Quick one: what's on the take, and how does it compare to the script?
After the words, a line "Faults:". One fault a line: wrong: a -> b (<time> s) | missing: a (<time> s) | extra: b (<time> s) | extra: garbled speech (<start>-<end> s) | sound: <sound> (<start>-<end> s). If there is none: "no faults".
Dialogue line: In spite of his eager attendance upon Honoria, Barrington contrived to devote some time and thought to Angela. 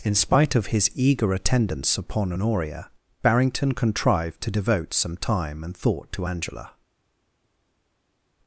In spite of his eager attendance upon Honoria, Barrington contrived to devote some time and thought to Angela.
Faults:
no faults